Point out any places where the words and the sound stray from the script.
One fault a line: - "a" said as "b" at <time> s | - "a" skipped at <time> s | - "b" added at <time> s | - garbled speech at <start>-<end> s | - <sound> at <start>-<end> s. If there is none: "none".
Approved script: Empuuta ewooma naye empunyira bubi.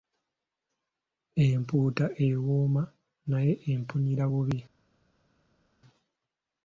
none